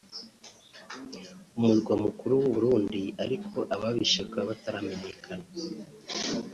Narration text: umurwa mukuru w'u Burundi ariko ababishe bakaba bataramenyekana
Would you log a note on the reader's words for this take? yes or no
no